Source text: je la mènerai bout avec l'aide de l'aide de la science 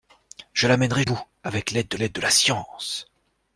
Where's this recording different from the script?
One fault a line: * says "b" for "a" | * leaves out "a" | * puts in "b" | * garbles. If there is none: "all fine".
all fine